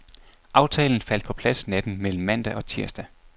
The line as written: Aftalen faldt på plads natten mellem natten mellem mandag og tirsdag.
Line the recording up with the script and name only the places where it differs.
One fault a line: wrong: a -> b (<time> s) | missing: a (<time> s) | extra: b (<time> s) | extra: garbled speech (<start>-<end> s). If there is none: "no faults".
missing: natten mellem (2.2 s)